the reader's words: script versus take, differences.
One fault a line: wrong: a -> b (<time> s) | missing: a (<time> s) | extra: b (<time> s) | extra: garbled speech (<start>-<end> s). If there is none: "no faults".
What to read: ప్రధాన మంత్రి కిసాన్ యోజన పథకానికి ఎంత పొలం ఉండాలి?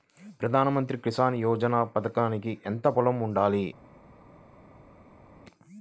no faults